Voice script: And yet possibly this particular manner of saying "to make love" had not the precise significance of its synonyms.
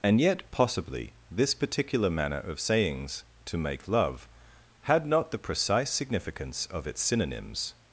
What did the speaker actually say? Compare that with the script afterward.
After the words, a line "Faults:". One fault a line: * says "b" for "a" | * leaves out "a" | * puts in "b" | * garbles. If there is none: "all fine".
And yet possibly this particular manner of sayings "to make love" had not the precise significance of its synonyms.
Faults:
* says "sayings" for "saying"